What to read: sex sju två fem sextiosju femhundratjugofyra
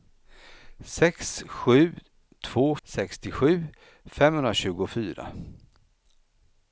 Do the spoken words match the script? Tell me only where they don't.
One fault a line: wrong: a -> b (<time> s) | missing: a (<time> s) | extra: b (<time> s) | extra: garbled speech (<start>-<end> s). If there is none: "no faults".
missing: fem (2.8 s)